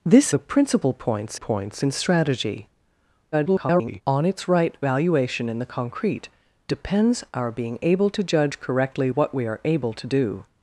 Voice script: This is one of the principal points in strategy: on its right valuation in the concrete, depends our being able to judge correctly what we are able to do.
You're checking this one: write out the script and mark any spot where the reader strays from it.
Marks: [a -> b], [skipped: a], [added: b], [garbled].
This [skipped: is one of] the principal points [added: points] in strategy: [garbled] on its right valuation in the concrete, depends our being able to judge correctly what we are able to do.